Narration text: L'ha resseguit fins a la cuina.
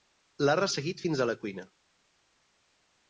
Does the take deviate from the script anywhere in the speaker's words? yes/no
no